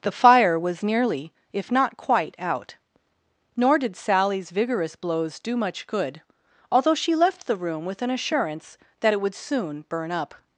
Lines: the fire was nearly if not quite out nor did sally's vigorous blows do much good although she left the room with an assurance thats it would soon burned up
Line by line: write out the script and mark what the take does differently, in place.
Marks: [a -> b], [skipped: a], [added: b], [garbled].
the fire was nearly if not quite out nor did sally's vigorous blows do much good although she left the room with an assurance [thats -> that] it would soon [burned -> burn] up